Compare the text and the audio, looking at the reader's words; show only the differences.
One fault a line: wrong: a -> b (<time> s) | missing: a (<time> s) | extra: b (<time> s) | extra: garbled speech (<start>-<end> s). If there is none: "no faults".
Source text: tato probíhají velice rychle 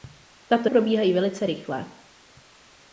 no faults